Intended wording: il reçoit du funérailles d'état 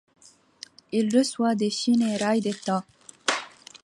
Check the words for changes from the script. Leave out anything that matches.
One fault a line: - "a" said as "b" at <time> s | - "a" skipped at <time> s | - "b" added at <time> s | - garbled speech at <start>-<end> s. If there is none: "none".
- "du" said as "des" at 1.6 s